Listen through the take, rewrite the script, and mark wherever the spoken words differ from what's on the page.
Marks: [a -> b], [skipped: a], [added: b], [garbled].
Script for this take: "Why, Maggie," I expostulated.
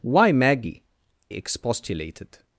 "Why, Maggie," [skipped: I] expostulated.